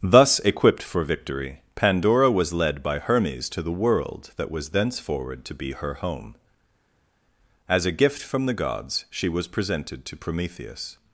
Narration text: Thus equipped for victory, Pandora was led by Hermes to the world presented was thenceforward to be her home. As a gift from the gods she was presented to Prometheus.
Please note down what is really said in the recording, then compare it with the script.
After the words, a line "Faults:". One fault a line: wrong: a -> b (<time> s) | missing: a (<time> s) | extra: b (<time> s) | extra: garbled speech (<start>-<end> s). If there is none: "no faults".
Thus equipped for victory, Pandora was led by Hermes to the world that was thenceforward to be her home. As a gift from the gods she was presented to Prometheus.
Faults:
wrong: presented -> that (4.3 s)